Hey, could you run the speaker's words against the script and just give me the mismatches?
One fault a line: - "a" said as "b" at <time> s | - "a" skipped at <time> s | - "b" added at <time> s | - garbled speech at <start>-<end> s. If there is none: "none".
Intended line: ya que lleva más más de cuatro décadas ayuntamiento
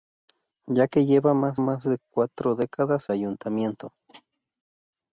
none